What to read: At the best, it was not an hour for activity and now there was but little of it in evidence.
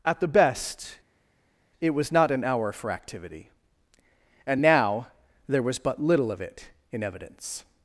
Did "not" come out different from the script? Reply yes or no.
no